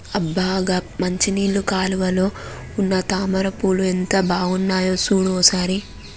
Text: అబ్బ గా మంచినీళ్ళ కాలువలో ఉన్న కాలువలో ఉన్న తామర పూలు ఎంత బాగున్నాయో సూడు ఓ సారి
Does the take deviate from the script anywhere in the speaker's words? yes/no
yes